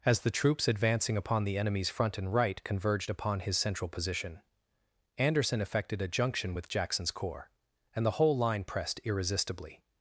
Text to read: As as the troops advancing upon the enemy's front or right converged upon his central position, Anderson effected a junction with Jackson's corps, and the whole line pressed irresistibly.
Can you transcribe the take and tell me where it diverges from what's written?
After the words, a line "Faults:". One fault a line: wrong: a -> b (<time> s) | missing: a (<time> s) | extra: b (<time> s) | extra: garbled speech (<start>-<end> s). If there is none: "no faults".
As the troops advancing upon the enemy's front and right converged upon his central position, Anderson effected a junction with Jackson's corps, and the whole line pressed irresistibly.
Faults:
missing: as (0.2 s)
wrong: or -> and (2.2 s)